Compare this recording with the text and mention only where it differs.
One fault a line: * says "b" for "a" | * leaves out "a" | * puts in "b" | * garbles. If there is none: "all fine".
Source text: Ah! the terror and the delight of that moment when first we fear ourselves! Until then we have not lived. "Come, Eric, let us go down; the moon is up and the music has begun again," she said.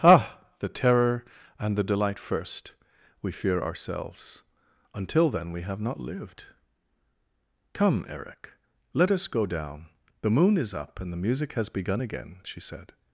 * leaves out "of that moment when"